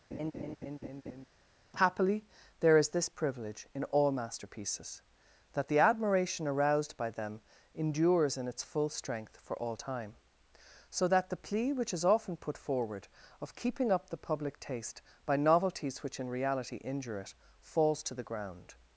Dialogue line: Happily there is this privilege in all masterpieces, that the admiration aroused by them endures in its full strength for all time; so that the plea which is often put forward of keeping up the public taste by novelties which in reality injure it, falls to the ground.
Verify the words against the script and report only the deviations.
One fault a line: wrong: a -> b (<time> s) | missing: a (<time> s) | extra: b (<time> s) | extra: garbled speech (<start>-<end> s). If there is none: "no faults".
no faults